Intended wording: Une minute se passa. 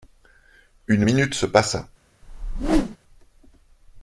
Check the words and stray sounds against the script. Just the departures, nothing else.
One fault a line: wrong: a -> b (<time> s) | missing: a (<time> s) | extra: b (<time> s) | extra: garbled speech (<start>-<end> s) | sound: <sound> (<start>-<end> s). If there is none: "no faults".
sound: whoosh (2.2-3.0 s)